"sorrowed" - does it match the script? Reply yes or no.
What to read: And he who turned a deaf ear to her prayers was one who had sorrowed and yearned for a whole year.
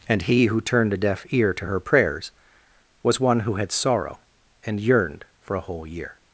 no